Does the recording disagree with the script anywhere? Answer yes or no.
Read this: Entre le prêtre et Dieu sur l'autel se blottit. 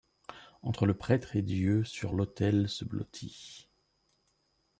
no